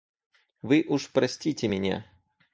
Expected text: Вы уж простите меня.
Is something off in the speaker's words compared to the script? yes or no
no